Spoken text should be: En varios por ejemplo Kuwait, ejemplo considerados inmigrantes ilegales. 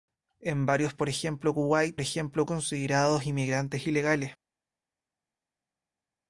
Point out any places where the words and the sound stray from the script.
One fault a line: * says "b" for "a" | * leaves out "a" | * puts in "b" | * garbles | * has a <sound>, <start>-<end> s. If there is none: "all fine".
all fine